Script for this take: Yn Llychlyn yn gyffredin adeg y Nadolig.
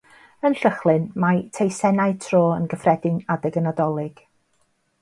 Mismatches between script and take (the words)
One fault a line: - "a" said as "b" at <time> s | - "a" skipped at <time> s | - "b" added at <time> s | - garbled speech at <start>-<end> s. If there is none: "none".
- "mae teisennau tro" added at 1.2 s